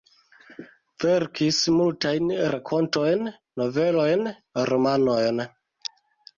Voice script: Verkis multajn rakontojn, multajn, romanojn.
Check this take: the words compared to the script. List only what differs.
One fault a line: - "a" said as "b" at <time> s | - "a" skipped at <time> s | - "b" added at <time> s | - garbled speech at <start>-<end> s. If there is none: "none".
- "multajn" said as "novelojn" at 3.6 s